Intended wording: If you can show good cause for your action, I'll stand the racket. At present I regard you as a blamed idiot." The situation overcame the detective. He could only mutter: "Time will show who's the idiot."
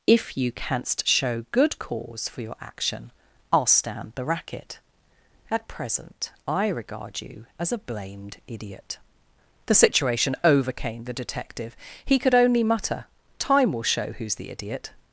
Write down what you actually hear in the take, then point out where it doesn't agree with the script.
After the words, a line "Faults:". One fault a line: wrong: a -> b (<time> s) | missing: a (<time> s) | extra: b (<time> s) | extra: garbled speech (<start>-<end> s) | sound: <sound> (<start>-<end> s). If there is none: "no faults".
If you canst show good cause for your action, I'll stand the racket. At present I regard you as a blamed idiot." The situation overcame the detective. He could only mutter: "Time will show who's the idiot."
Faults:
wrong: can -> canst (0.5 s)